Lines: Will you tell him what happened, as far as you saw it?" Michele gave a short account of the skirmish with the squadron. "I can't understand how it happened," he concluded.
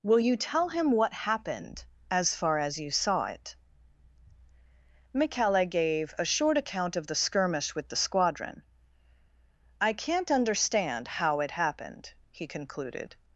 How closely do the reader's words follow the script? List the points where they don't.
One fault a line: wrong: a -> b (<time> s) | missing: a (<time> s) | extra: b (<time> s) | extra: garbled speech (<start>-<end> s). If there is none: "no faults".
no faults